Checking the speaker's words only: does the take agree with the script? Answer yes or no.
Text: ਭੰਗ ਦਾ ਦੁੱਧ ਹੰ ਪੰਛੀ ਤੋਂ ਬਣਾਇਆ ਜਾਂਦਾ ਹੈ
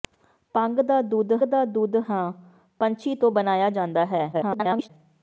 no